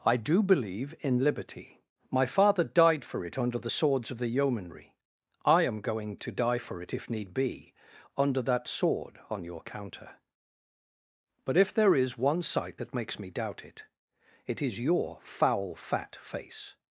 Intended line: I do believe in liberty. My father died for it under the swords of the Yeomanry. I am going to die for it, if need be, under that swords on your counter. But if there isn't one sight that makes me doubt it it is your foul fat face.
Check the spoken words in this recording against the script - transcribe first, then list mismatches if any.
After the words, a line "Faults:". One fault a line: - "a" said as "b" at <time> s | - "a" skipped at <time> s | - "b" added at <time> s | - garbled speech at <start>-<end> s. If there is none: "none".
I do believe in liberty. My father died for it under the swords of the Yeomanry. I am going to die for it, if need be, under that sword on your counter. But if there is one sight that makes me doubt it it is your foul fat face.
Faults:
- "swords" said as "sword" at 8.7 s
- "isn't" said as "is" at 12.0 s